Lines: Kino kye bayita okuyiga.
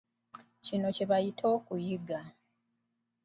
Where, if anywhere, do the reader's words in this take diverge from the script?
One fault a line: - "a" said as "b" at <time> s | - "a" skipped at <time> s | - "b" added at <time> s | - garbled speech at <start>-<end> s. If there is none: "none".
none